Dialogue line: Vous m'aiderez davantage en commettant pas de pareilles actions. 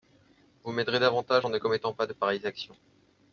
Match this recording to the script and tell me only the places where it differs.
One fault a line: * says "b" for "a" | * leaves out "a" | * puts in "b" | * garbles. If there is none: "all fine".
* puts in "ne"